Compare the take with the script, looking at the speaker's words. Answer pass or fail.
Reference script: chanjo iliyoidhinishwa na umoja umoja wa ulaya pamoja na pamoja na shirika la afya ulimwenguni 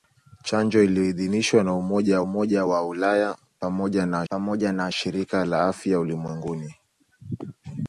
pass